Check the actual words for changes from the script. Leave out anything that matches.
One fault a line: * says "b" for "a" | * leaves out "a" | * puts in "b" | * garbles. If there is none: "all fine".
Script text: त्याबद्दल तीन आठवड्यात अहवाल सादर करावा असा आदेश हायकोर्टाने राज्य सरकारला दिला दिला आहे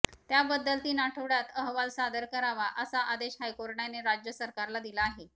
* leaves out "दिला"